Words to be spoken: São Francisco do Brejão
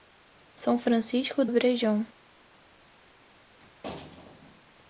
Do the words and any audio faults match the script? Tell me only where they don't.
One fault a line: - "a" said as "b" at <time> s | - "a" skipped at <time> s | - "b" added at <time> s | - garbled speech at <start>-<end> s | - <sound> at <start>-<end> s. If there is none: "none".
- "do" skipped at 1.5 s